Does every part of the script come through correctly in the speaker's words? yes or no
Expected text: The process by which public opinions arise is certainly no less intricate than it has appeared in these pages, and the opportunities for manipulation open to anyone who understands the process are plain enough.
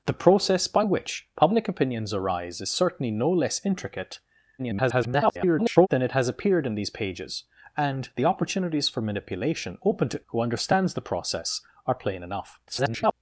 no